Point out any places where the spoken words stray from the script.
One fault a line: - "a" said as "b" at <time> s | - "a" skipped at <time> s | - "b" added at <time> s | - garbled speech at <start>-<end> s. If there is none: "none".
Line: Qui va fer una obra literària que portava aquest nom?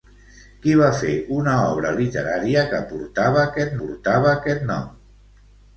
- "portava aquest" added at 3.8 s